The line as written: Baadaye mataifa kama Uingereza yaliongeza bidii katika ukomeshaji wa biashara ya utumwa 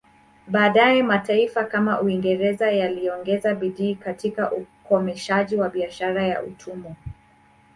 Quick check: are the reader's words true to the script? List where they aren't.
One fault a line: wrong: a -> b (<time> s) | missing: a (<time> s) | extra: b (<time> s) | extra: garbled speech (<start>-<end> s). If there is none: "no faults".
no faults